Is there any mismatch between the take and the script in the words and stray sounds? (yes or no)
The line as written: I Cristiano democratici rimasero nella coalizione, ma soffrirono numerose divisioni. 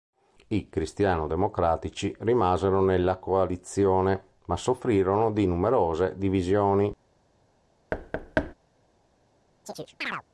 yes